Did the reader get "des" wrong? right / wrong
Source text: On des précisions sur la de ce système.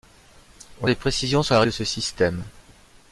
right